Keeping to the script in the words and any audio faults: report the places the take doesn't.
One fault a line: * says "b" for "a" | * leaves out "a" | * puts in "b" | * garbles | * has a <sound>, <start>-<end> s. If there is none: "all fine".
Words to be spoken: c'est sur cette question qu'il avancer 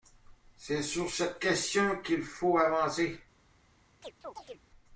* puts in "faut"
* has a chirp, 4.0-4.6 s